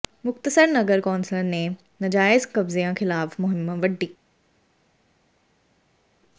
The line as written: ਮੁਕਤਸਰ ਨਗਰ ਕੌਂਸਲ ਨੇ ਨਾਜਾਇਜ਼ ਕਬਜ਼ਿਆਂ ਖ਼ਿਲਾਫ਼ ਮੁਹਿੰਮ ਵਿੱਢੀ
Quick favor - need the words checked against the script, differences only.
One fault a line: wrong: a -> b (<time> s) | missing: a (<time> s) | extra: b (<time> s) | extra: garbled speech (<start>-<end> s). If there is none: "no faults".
no faults